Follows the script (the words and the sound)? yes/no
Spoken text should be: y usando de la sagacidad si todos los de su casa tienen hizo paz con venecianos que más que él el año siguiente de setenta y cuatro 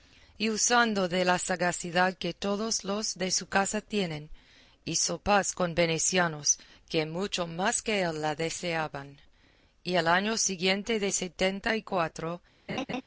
no